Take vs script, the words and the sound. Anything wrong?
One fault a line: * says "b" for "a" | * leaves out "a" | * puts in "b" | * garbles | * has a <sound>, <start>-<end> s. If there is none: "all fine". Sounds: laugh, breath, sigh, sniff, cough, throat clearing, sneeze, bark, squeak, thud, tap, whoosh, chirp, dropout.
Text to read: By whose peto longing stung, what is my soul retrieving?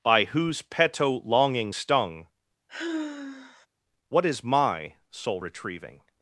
* has a sigh, 2.7-3.7 s